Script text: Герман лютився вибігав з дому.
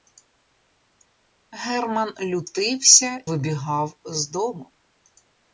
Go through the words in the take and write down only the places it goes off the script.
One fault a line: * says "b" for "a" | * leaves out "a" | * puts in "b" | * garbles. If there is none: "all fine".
all fine